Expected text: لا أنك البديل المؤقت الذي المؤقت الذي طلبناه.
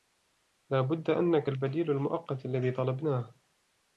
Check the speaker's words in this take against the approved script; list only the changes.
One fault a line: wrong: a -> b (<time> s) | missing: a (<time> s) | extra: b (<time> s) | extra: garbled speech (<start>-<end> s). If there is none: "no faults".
extra: بد (0.8 s)
missing: المؤقت الذي (2.7 s)